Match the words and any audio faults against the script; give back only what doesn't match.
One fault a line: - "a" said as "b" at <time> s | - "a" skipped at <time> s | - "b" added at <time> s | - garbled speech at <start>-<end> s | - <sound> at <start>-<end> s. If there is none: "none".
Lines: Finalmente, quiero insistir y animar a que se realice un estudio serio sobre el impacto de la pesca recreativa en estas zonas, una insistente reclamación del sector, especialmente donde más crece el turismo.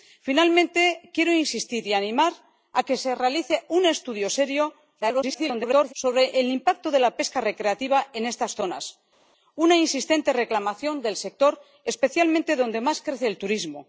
- garbled speech at 5.0-5.9 s